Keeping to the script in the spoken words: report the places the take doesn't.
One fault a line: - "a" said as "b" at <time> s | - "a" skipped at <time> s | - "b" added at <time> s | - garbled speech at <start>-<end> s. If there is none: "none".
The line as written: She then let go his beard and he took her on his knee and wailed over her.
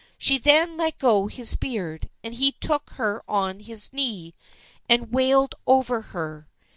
none